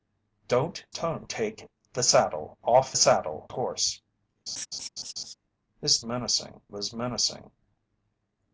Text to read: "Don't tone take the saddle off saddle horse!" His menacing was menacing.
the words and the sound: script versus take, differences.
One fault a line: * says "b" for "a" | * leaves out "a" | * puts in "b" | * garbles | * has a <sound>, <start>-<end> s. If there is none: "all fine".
* has a laugh, 4.5-5.3 s